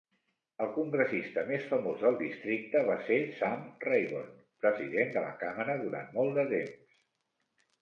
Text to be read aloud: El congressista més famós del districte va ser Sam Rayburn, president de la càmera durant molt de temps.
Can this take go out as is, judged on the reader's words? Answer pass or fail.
pass